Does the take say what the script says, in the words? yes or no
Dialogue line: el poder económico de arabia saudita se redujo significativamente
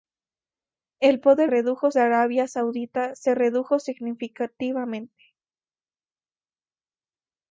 no